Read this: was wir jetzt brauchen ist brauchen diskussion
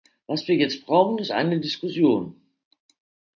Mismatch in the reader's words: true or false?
true